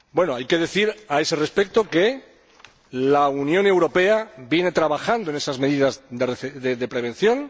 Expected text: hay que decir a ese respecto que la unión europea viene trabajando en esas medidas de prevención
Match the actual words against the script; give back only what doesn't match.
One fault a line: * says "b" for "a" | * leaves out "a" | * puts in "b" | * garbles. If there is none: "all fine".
all fine